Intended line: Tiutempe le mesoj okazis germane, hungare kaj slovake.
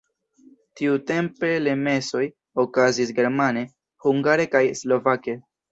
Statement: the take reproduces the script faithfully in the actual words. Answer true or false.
true